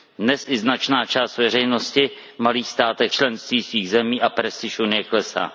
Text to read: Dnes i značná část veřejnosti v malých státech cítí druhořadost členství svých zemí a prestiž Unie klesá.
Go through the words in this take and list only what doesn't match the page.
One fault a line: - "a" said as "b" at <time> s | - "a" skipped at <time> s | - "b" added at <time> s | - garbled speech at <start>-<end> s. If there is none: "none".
- "cítí druhořadost" skipped at 3.1 s